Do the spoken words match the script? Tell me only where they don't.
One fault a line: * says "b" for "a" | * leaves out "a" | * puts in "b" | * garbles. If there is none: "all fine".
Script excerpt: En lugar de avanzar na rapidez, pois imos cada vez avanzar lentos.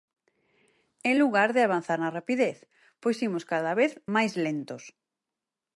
* says "máis" for "avanzar"